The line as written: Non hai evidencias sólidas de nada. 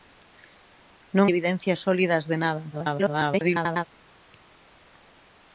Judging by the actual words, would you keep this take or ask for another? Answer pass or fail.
fail